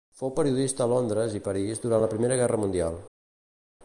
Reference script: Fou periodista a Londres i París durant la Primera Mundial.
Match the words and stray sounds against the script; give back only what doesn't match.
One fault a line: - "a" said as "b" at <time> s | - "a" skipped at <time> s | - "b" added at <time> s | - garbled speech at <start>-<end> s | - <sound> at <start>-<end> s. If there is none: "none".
- "Guerra" added at 2.4 s